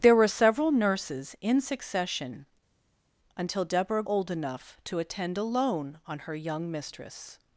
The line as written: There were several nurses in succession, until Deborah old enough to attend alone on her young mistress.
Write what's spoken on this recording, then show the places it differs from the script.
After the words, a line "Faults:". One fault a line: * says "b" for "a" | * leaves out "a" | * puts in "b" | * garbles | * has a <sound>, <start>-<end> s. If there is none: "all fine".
There were several nurses in succession, until Deborah old enough to attend alone on her young mistress.
Faults:
all fine